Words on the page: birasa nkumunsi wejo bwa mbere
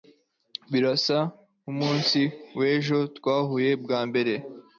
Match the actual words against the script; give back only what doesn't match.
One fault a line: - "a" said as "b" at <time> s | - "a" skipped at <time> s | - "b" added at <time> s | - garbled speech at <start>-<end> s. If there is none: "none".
- "twahuye" added at 3.2 s